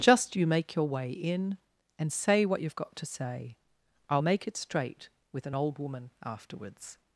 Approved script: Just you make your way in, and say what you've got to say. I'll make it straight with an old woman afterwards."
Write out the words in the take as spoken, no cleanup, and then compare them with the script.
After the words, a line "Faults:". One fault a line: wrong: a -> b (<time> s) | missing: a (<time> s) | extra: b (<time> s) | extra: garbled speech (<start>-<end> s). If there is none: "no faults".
Just you make your way in, and say what you've got to say. I'll make it straight with an old woman afterwards."
Faults:
no faults